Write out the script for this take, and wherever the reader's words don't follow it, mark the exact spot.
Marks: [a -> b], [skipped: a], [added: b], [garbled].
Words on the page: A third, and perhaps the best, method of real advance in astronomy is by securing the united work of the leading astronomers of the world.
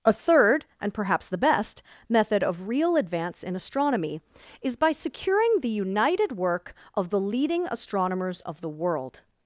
A third, and perhaps the best, method of real advance in astronomy is by securing the united work of the leading astronomers of the world.